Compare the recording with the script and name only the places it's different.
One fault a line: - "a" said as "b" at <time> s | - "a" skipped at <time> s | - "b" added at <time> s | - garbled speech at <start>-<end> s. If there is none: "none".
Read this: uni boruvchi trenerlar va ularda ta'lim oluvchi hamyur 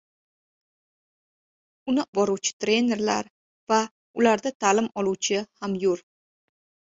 none